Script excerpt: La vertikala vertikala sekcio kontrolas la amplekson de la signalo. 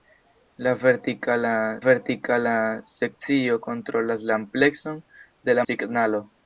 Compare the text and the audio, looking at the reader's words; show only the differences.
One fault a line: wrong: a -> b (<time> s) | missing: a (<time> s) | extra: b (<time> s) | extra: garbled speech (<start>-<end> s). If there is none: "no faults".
no faults